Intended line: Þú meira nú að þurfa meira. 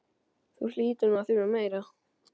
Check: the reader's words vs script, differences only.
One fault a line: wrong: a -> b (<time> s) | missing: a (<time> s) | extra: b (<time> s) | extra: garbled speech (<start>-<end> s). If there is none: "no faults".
wrong: meira -> hlýtur (0.8 s)